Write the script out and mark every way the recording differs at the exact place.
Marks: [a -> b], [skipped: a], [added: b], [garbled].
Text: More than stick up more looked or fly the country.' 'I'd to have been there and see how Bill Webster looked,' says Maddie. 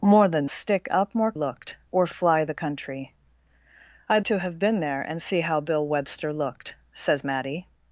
More than stick up more looked or fly the country.' 'I'd to have been there and see how Bill Webster looked,' says Maddie.